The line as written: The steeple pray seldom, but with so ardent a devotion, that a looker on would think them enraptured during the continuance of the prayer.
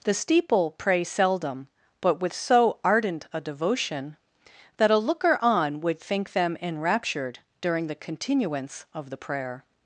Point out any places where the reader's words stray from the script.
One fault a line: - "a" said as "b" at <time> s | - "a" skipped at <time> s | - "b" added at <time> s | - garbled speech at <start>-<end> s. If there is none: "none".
none